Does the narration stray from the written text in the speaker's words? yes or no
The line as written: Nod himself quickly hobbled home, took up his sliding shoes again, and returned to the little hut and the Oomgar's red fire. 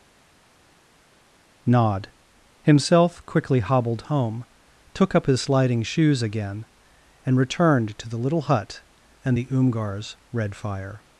no